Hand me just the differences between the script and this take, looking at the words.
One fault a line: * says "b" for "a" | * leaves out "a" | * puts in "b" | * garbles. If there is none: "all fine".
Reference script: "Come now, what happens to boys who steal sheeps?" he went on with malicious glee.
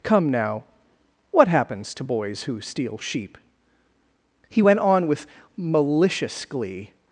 * says "sheep" for "sheeps"